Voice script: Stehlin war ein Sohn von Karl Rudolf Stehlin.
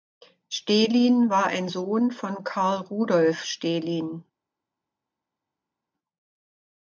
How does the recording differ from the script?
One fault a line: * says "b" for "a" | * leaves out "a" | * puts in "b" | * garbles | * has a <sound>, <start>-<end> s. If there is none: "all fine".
all fine